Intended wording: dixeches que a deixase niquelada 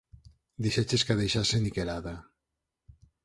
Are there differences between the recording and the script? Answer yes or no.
no